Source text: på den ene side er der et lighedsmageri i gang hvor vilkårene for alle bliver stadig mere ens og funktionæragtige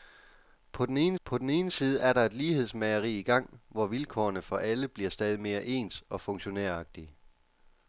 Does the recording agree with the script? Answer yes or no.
no